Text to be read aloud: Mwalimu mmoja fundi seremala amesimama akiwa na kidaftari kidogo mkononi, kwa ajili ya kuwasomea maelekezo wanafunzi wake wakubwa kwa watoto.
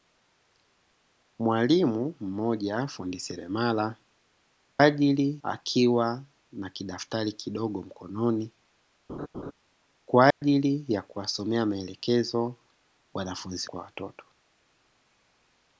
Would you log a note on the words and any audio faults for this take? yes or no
yes